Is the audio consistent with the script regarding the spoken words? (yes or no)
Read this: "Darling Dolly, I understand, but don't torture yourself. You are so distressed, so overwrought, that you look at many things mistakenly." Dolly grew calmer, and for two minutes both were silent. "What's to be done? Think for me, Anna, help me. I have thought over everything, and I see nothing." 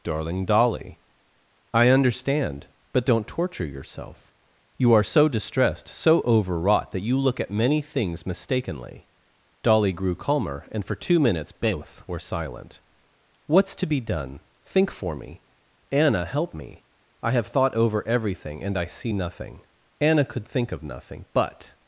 no